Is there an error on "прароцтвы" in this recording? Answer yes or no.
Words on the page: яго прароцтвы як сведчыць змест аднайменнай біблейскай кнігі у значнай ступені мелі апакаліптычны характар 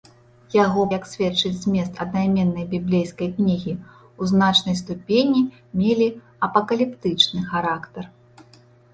yes